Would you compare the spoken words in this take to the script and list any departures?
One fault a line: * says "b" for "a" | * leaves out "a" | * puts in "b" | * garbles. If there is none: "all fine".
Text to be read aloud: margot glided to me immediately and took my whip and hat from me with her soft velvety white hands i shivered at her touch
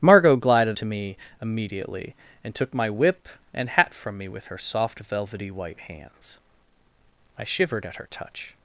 all fine